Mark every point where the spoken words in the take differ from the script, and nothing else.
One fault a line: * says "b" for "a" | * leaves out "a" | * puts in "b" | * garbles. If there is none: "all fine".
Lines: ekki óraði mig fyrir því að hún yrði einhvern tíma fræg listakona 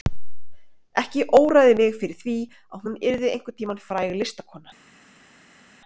all fine